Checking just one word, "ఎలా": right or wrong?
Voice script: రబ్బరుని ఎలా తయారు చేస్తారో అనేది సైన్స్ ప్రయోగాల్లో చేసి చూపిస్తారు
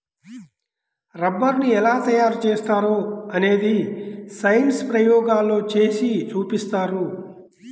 right